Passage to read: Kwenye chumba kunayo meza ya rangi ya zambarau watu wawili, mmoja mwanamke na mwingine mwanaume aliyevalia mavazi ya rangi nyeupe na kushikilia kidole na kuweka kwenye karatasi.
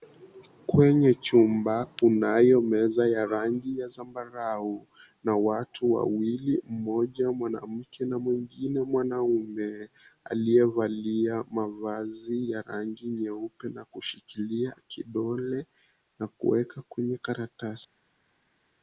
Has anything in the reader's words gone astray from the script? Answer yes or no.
yes